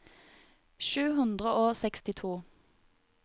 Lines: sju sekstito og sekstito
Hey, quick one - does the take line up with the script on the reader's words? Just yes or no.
no